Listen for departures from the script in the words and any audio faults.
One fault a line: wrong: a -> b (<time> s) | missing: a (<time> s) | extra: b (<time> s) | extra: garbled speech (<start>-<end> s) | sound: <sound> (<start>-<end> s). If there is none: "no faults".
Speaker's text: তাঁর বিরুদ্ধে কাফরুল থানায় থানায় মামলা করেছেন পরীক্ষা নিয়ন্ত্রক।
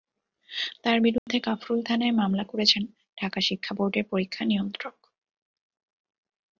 sound: dropout (1.2-1.3 s)
missing: থানায় (2.1 s)
extra: ঢাকা শিক্ষা বোর্ডের (3.2 s)